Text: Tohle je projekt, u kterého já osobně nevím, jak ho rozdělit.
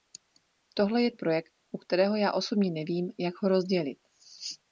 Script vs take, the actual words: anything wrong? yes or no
no